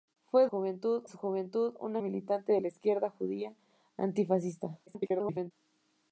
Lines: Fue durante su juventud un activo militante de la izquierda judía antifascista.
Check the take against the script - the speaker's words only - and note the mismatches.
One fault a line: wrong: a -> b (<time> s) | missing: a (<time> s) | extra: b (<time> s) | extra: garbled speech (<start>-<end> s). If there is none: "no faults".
wrong: durante -> juventud (0.5 s)
missing: activo (2.0 s)
extra: garbled speech (4.9-5.5 s)